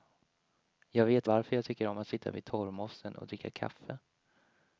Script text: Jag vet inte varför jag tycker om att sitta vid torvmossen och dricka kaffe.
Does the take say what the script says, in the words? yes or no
no